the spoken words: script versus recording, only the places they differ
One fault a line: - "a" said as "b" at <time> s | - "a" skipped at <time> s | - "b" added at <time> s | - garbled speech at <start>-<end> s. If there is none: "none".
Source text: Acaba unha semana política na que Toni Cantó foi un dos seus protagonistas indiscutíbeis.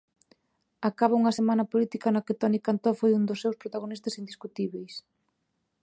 none